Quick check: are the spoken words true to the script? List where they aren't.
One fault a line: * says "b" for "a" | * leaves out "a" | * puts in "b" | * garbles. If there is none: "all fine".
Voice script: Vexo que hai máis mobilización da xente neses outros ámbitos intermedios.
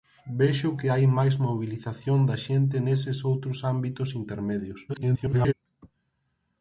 * garbles